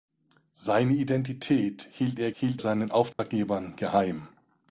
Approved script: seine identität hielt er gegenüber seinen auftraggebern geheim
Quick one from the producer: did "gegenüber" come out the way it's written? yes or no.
no